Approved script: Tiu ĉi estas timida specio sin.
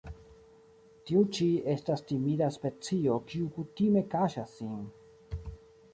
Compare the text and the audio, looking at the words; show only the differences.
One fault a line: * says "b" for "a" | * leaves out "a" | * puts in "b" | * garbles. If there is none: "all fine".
* puts in "kiu kutime kaŝas"